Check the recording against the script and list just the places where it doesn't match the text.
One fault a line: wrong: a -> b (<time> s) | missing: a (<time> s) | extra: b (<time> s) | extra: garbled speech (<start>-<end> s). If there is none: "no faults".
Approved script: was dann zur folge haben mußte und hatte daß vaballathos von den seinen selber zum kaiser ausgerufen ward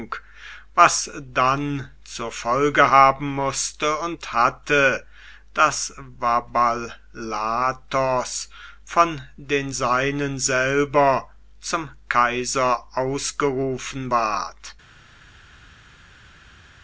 no faults